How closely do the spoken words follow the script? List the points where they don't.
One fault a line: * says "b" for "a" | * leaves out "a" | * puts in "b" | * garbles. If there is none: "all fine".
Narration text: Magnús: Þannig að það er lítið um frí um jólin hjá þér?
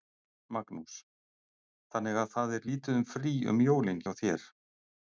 all fine